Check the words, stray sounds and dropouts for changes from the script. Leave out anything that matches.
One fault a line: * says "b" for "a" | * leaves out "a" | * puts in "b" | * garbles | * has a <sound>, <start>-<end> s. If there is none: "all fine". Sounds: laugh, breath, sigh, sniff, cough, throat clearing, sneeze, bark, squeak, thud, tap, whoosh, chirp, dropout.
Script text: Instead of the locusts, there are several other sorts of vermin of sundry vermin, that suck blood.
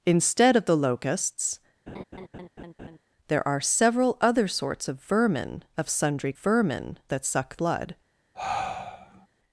* has a laugh, 1.9-3.0 s
* has a sigh, 8.3-9.3 s